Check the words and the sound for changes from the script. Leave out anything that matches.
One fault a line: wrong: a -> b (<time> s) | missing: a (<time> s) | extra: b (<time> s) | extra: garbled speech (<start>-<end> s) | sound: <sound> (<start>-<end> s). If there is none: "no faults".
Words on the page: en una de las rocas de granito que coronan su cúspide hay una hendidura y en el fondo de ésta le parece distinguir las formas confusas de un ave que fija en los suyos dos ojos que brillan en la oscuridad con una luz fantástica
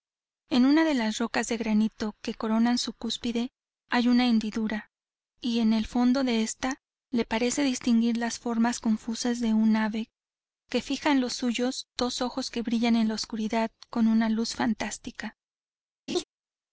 sound: laugh (16.1-16.2 s)